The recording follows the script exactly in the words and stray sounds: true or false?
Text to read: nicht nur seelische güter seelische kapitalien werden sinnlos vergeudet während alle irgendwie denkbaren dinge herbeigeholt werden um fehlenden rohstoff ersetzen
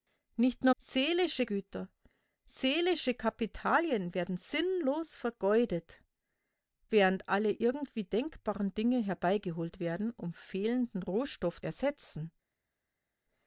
true